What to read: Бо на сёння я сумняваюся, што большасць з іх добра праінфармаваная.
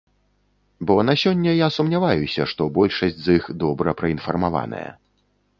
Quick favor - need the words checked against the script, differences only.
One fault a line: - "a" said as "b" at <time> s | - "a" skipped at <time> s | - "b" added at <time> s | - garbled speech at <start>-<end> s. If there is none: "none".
none